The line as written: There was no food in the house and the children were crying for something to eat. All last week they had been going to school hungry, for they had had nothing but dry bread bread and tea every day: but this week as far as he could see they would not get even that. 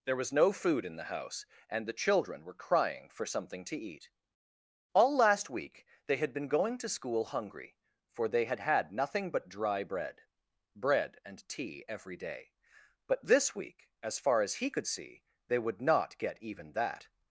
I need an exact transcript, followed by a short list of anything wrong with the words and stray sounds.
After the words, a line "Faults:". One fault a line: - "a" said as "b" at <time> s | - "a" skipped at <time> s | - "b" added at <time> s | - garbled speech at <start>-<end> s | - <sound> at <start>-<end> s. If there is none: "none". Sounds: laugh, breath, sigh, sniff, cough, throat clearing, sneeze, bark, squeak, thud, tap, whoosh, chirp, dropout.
There was no food in the house and the children were crying for something to eat. All last week they had been going to school hungry, for they had had nothing but dry bread bread and tea every day: but this week as far as he could see they would not get even that.
Faults:
none